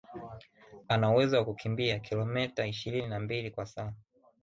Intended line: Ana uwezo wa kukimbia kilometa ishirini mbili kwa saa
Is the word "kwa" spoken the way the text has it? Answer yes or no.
yes